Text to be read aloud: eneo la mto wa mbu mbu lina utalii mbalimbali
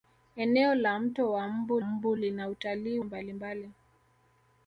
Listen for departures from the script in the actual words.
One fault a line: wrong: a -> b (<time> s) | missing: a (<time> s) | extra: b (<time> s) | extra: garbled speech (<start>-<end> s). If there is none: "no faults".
no faults